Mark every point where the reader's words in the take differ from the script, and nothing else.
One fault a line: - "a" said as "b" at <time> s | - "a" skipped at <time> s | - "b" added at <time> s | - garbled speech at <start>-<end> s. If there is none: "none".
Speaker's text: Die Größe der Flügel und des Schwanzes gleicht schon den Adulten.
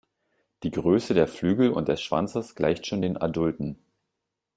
none